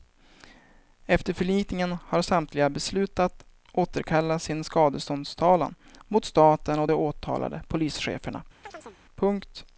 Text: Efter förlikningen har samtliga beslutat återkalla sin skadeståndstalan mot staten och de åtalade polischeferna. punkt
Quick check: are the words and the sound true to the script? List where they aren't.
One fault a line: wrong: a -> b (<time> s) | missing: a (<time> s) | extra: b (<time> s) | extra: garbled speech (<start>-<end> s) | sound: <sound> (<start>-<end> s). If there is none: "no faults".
sound: chirp (8.6-9.0 s)